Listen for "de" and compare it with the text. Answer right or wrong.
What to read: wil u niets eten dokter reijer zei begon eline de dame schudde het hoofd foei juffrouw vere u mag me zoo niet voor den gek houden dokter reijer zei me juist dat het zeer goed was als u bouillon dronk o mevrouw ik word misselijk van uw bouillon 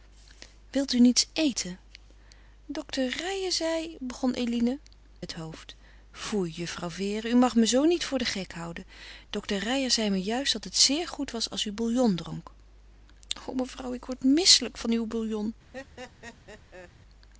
wrong